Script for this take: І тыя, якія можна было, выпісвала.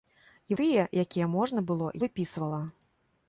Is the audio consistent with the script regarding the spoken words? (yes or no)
yes